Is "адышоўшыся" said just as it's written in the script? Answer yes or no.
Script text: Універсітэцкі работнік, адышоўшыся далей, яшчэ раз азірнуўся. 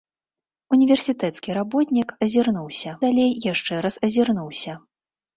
no